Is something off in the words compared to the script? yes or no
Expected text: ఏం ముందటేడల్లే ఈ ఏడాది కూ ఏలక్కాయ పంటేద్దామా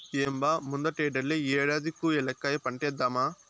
yes